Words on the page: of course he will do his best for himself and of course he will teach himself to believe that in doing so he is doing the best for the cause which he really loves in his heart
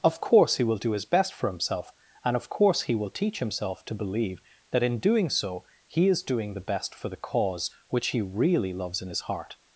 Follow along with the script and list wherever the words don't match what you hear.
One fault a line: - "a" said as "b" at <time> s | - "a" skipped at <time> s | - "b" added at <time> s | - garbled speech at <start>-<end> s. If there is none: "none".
none